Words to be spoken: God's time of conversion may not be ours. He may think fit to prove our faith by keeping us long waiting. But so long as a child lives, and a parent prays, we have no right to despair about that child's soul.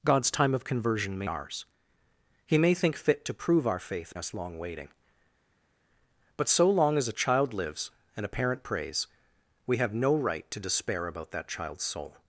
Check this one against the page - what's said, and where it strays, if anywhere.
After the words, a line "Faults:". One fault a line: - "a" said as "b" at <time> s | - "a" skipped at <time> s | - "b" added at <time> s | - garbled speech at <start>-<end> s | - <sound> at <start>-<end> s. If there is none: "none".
God's time of conversion may ours. He may think fit to prove our faith us long waiting. But so long as a child lives, and a parent prays, we have no right to despair about that child's soul.
Faults:
- "not be" skipped at 1.3 s
- "by keeping" skipped at 4.1 s